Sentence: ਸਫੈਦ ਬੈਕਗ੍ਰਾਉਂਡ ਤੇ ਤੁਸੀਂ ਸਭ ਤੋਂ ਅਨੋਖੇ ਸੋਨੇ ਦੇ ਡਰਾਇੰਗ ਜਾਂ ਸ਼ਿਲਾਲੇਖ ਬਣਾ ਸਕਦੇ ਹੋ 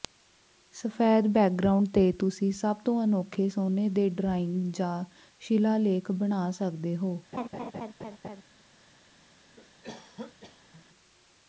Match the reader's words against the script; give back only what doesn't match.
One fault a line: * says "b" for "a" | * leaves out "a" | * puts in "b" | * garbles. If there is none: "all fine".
all fine